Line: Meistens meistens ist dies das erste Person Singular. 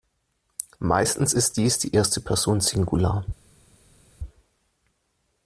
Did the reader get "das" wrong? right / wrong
wrong